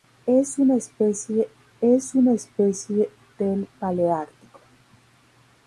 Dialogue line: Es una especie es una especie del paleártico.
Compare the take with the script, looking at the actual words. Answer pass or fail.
pass